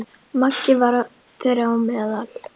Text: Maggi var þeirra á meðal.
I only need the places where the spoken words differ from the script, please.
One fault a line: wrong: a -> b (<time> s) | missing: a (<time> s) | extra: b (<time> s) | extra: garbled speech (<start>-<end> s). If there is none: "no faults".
no faults